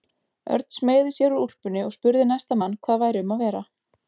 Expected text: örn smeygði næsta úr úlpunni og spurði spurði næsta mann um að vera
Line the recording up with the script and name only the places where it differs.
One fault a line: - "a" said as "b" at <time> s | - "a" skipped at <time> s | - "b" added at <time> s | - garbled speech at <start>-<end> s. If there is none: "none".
- "næsta" said as "sér" at 1.2 s
- "spurði" skipped at 2.2 s
- "hvað væri" added at 2.9 s